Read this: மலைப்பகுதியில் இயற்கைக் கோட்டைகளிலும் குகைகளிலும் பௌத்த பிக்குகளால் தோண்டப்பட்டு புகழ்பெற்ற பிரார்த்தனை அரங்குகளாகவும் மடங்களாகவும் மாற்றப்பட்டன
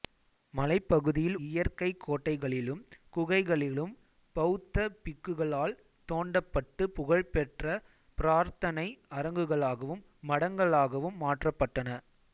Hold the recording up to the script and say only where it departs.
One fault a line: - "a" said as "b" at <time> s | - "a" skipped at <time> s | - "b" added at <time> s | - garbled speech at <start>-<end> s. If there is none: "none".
none